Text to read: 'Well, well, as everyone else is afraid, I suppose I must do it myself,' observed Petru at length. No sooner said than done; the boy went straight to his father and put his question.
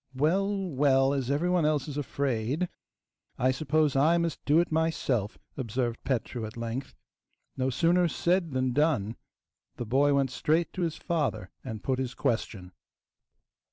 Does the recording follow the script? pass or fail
pass